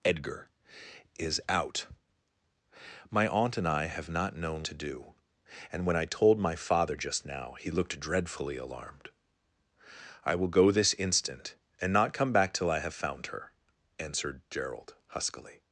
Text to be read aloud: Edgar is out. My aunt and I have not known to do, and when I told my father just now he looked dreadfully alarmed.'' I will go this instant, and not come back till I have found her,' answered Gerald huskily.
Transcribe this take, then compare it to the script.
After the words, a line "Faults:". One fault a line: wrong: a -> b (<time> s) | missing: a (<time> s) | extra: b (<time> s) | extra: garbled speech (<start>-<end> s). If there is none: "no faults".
Edgar is out. My aunt and I have not known to do, and when I told my father just now he looked dreadfully alarmed.'' I will go this instant, and not come back till I have found her,' answered Gerald huskily.
Faults:
no faults